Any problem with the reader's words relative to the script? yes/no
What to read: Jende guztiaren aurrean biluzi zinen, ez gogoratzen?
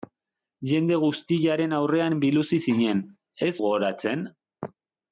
no